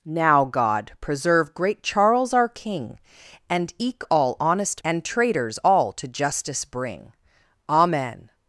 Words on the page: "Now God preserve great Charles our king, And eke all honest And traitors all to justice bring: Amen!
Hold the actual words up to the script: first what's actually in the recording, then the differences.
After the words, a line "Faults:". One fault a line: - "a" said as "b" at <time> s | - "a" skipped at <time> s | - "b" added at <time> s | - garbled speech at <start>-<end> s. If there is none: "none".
"Now God preserve great Charles our king, And eke all honest And traitors all to justice bring: Amen!
Faults:
none